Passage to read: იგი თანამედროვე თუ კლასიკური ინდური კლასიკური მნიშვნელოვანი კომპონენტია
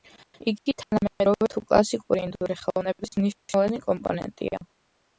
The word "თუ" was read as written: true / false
true